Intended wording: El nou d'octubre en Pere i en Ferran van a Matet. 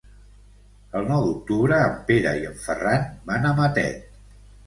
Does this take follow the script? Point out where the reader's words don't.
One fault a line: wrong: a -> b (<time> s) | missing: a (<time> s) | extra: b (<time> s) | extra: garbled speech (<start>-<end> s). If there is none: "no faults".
no faults